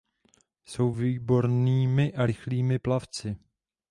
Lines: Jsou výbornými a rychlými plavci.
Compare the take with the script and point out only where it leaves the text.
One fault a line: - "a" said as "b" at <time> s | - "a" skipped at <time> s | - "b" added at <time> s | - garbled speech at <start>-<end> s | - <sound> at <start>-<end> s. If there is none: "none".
none